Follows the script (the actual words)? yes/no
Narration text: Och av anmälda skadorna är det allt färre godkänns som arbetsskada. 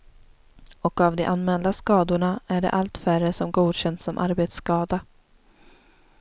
no